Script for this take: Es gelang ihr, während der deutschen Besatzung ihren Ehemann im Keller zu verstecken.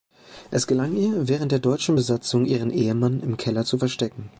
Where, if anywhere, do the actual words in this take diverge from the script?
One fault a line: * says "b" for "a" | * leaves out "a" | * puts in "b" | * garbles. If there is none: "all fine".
all fine